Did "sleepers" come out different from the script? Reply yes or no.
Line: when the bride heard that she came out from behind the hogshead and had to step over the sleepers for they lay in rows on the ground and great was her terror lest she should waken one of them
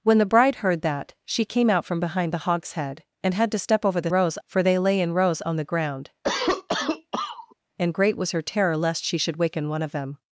yes